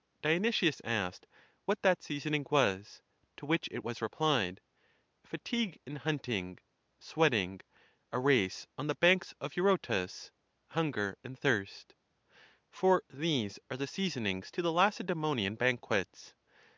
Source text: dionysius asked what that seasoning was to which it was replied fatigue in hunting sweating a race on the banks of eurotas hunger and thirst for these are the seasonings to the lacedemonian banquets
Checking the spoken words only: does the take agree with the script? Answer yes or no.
yes